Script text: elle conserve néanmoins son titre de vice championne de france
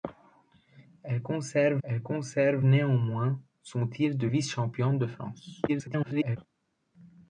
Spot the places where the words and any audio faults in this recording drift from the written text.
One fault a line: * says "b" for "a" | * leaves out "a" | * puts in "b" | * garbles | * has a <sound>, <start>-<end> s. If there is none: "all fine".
* puts in "elle conserve"
* garbles